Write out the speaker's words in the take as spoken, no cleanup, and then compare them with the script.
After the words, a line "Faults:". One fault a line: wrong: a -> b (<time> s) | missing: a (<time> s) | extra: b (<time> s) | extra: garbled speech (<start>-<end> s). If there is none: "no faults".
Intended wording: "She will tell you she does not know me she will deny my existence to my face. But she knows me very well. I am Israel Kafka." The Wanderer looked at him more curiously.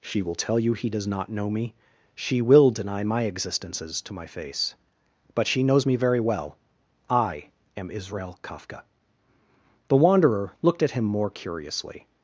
"She will tell you he does not know me she will deny my existences to my face. But she knows me very well. I am Israel Kafka." The Wanderer looked at him more curiously.
Faults:
wrong: she -> he (0.7 s)
wrong: existence -> existences (3.2 s)